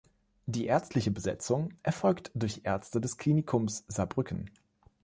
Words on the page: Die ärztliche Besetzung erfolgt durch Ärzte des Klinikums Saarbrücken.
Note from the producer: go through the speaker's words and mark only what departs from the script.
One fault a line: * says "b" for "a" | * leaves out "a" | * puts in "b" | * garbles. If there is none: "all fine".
all fine